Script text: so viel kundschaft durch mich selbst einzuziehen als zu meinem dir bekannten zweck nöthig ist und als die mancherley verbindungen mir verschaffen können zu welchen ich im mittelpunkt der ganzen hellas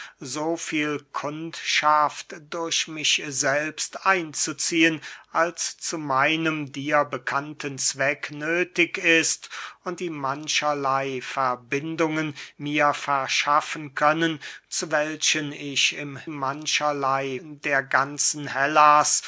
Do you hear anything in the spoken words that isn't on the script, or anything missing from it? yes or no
yes